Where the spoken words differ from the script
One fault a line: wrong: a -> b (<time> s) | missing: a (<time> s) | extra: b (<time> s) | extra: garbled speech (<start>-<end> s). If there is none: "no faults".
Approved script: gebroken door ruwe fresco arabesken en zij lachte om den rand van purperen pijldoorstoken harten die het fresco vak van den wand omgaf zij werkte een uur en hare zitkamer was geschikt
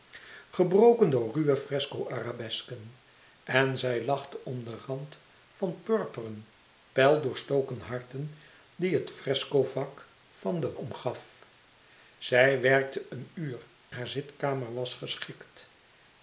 missing: wand (10.8 s)
missing: en (13.7 s)